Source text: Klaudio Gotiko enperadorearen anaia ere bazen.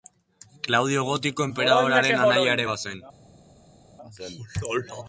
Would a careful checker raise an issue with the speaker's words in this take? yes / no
no